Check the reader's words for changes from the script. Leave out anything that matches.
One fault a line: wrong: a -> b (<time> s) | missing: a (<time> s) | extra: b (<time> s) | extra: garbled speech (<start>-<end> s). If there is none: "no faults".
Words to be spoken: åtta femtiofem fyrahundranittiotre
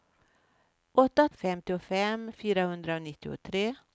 no faults